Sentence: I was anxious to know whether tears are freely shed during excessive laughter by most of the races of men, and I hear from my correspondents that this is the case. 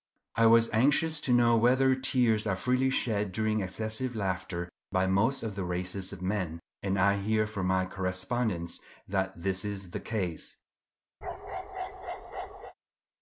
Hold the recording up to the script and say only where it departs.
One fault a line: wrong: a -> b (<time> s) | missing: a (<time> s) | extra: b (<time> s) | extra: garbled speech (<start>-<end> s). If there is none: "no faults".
no faults